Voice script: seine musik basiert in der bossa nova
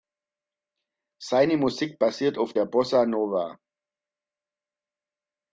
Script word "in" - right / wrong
wrong